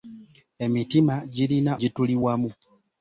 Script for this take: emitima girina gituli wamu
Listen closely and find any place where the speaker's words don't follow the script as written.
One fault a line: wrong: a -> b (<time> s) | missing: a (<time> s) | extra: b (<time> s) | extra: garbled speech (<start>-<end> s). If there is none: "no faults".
no faults